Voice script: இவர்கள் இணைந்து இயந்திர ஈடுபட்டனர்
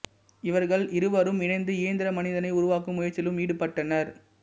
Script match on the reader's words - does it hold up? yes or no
no